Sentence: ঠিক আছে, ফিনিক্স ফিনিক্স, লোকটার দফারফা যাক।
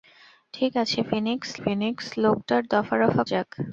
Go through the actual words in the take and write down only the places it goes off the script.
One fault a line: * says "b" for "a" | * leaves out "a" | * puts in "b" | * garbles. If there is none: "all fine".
all fine